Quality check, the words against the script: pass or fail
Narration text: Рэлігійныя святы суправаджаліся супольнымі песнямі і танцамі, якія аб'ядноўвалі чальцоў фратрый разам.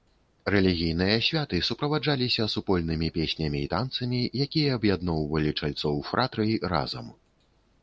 pass